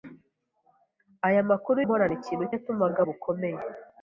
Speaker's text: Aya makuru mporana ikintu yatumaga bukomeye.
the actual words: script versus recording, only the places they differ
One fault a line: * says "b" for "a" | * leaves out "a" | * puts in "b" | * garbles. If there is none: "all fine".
all fine